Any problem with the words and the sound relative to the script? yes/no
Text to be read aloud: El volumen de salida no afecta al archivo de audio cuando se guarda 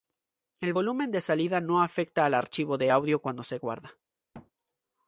yes